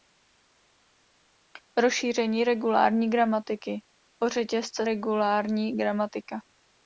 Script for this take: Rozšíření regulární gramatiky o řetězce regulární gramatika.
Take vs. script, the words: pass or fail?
pass